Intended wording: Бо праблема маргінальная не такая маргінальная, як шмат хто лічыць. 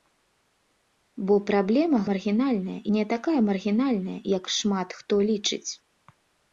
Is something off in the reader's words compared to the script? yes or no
no